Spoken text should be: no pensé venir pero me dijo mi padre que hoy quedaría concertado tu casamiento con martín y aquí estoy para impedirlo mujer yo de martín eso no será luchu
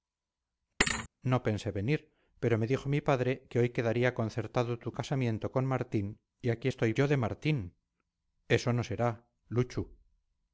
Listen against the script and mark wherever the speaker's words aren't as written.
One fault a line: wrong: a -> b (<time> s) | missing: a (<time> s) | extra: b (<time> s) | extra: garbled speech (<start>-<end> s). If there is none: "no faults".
missing: para impedirlo mujer (6.9 s)